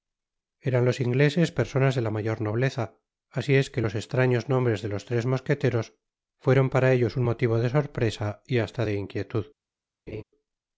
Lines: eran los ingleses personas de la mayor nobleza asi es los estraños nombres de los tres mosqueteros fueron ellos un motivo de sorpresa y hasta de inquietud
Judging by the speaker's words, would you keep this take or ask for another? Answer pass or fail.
fail